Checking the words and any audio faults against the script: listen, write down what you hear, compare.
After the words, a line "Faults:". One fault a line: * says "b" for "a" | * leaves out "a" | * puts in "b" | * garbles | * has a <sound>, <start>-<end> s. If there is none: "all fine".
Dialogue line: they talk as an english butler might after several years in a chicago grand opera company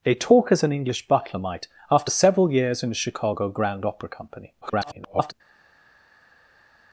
they talk as an english butler might after several years in a chicago grand opera company [garbled]
Faults:
* garbles